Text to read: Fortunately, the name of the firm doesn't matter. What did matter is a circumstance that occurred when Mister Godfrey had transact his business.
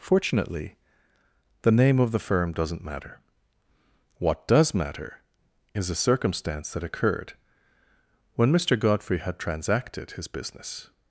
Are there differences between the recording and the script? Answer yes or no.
yes